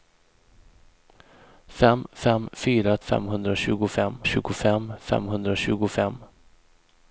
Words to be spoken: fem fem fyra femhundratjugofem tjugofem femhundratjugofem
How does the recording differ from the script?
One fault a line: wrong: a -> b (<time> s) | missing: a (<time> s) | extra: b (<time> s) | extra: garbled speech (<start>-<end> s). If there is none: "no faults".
no faults